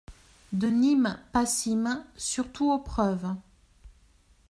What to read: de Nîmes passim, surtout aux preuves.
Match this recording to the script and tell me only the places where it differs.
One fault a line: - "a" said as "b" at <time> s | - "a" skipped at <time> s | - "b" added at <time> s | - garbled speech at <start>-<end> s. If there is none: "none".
none